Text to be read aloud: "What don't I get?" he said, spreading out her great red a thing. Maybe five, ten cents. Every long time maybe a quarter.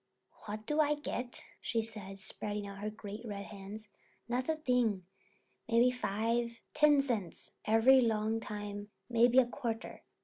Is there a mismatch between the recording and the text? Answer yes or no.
yes